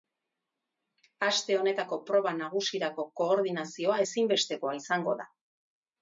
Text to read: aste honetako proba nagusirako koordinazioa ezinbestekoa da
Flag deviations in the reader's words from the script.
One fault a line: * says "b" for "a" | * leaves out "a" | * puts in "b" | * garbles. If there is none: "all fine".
* puts in "izango"